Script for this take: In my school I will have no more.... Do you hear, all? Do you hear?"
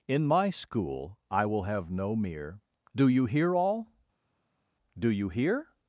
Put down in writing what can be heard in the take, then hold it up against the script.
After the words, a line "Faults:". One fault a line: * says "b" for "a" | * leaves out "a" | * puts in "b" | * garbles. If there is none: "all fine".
In my school I will have no mere.... Do you hear, all? Do you hear?"
Faults:
* says "mere" for "more"